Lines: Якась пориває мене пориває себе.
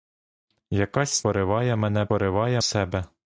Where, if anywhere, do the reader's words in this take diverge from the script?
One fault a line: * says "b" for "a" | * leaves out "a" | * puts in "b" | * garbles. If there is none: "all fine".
all fine